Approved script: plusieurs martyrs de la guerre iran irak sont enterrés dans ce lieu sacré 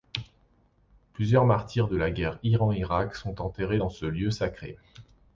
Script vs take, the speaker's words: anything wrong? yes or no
no